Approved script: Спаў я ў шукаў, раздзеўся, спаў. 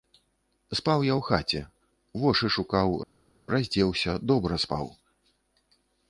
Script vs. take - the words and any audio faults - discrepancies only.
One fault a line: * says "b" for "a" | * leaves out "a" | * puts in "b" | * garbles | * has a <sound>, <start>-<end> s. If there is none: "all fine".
* puts in "хаце вошы"
* puts in "добра"